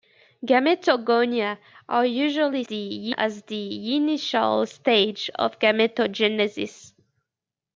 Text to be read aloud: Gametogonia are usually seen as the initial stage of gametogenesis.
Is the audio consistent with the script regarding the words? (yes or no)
no